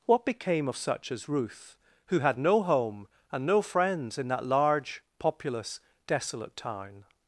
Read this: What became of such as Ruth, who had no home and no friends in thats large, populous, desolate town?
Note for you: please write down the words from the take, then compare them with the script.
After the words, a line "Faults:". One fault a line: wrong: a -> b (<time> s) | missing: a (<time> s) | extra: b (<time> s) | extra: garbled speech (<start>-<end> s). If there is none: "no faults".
What became of such as Ruth, who had no home and no friends in that large, populous, desolate town?
Faults:
wrong: thats -> that (4.3 s)